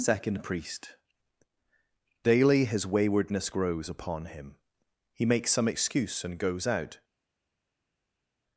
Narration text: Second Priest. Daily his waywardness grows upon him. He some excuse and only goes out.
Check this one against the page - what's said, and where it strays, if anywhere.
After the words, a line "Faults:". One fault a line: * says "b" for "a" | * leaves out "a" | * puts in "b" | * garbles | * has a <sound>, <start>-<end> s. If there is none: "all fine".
Second Priest. Daily his waywardness grows upon him. He makes some excuse and goes out.
Faults:
* puts in "makes"
* leaves out "only"